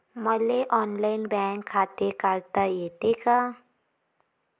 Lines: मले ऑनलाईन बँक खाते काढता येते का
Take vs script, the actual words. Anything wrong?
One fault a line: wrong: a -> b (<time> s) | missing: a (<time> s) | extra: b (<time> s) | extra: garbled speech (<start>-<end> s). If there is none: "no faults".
no faults